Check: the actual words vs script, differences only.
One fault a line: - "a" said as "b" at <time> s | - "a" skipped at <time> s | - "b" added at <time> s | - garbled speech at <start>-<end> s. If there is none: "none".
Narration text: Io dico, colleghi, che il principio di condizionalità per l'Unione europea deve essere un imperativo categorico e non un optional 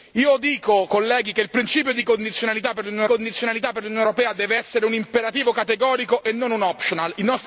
- "condizionalità per l'Unione" added at 3.0 s